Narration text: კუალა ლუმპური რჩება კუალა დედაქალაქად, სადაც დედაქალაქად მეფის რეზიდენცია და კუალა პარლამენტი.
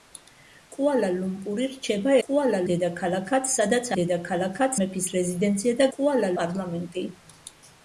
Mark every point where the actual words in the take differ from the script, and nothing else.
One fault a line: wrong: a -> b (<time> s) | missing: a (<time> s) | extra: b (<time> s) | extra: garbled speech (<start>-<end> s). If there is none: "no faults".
no faults